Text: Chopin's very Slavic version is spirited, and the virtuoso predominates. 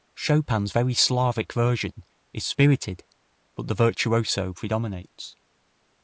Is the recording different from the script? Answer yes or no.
yes